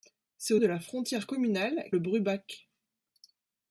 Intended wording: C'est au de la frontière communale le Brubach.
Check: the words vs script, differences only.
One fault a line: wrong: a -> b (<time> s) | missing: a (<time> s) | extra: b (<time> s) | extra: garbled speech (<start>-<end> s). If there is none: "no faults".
no faults